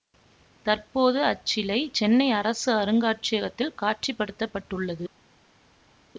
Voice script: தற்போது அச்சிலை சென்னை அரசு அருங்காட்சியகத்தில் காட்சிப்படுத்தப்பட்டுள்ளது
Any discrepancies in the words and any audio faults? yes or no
no